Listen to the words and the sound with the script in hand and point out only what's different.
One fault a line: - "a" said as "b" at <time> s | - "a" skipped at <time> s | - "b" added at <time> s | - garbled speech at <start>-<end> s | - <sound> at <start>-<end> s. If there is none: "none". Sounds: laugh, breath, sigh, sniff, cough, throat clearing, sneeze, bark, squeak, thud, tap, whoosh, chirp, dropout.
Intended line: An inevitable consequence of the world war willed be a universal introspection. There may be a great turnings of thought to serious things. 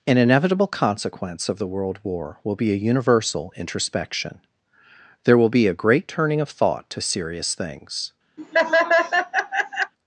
- "willed" said as "will" at 2.4 s
- "may" said as "will" at 5.4 s
- "turnings" said as "turning" at 6.1 s
- laugh at 8.4-9.9 s